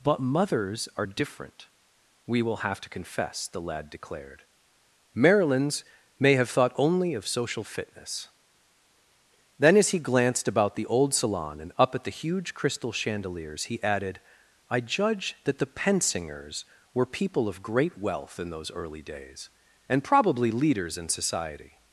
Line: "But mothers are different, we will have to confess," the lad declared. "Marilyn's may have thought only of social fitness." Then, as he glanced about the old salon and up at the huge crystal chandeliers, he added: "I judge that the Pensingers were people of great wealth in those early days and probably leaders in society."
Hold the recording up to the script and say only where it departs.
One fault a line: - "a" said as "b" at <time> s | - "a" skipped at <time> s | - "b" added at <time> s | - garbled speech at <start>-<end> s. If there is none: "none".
none